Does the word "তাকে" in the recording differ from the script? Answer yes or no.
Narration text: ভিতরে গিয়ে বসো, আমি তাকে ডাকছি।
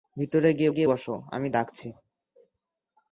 yes